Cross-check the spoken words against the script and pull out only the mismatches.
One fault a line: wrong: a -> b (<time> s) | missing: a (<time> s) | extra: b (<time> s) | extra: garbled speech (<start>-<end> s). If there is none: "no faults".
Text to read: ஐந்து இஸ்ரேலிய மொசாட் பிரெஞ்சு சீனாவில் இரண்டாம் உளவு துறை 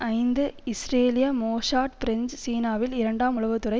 no faults